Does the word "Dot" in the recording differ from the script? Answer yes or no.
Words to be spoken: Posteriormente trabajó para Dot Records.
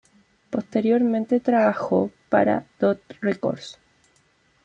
no